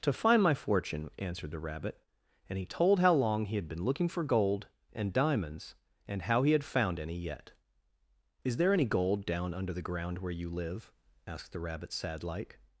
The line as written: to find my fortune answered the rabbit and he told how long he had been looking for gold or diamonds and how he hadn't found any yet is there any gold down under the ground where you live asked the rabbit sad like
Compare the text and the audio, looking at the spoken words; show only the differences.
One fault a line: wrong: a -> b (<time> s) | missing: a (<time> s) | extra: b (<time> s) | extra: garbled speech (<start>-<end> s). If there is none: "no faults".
wrong: or -> and (4.9 s)
wrong: hadn't -> had (6.5 s)